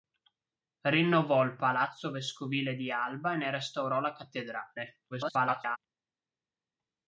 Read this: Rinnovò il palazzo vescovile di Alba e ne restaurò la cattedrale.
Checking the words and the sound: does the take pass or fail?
fail